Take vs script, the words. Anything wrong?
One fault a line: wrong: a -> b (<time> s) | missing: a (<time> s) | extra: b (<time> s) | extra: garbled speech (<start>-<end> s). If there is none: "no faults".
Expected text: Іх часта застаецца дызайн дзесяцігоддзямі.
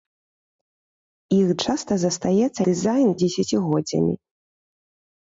no faults